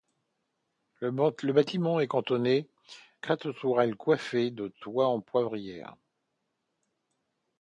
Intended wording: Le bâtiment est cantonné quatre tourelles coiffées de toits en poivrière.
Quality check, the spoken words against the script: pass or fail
pass